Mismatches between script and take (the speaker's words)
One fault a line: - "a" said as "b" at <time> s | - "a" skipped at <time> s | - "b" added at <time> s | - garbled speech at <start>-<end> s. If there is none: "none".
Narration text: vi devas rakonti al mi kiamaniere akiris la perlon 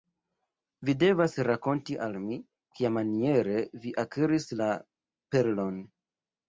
- "vi" added at 3.9 s